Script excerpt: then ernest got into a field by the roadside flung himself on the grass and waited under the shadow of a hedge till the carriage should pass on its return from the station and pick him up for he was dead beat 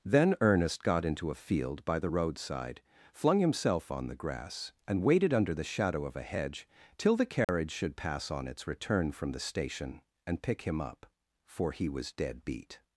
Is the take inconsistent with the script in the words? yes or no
no